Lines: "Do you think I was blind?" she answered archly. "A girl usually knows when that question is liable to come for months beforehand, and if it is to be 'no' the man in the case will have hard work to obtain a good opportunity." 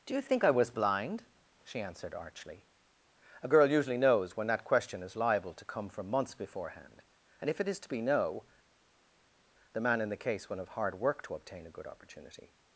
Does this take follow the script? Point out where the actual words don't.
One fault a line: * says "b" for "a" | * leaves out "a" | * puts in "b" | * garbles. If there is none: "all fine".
* says "from" for "for"